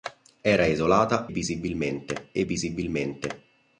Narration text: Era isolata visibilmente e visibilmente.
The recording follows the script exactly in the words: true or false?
true